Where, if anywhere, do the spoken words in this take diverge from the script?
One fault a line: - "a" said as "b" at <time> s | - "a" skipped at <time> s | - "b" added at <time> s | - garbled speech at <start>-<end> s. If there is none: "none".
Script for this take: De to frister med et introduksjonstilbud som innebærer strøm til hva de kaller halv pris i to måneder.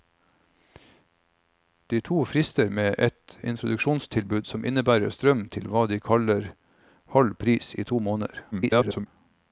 - garbled speech at 8.5-9.1 s